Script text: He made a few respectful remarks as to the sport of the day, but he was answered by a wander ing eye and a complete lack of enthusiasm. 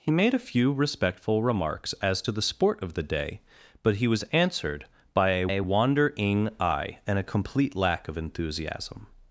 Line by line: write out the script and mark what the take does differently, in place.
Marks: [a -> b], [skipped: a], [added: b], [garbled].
He made a few respectful remarks as to the sport of the day, but he was answered by a [added: a] wander ing eye and a complete lack of enthusiasm.